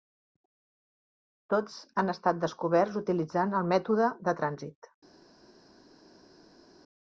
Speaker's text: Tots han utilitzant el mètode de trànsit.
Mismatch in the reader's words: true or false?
true